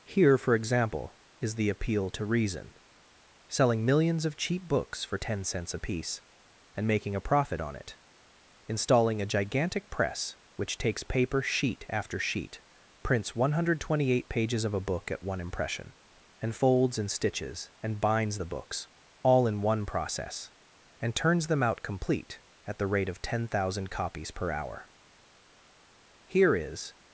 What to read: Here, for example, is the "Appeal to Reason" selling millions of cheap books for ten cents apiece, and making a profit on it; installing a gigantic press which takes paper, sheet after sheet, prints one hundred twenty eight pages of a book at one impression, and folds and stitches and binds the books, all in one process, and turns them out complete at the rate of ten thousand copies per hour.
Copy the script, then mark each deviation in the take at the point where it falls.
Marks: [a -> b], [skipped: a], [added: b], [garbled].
Here, for example, is the "Appeal to Reason" selling millions of cheap books for ten cents apiece, and making a profit on it; installing a gigantic press which takes paper, sheet after sheet, prints one hundred twenty eight pages of a book at one impression, and folds and stitches and binds the books, all in one process, and turns them out complete at the rate of ten thousand copies per hour. [added: Here is]